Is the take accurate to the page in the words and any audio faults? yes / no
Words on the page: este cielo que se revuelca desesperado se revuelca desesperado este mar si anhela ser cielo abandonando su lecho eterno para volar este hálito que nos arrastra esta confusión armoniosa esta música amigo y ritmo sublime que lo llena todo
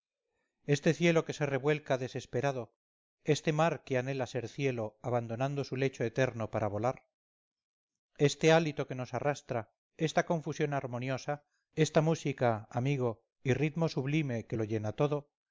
no